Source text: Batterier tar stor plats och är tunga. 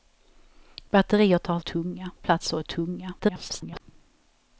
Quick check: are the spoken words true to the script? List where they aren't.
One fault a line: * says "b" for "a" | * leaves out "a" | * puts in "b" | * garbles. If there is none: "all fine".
* says "tunga" for "stor"
* garbles